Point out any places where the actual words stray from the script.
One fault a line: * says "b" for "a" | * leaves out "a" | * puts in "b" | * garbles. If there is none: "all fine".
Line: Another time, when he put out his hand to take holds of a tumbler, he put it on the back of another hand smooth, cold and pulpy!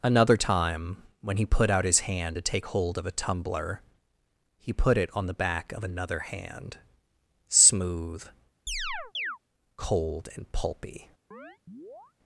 * says "hold" for "holds"